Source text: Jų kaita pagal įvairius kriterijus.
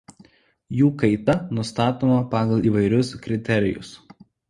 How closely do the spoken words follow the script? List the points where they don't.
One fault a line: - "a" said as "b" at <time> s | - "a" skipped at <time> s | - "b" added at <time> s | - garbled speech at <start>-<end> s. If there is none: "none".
- "nustatoma" added at 1.6 s